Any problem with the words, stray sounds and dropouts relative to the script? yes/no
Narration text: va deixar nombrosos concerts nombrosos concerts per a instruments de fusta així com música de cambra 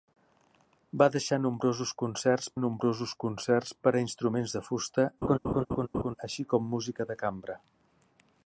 yes